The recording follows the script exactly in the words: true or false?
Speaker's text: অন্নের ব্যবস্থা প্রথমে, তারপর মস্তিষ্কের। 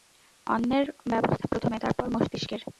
true